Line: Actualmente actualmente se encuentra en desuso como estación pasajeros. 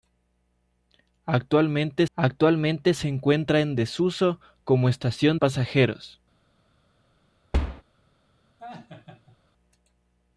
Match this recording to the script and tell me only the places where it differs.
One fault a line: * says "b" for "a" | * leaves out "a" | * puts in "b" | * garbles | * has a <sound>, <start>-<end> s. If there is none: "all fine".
* has a thud, 7.5-7.8 s
* has a laugh, 8.6-9.4 s